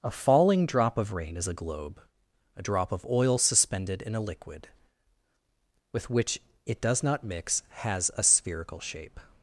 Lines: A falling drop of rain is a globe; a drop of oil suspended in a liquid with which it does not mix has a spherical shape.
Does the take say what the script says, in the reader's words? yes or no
yes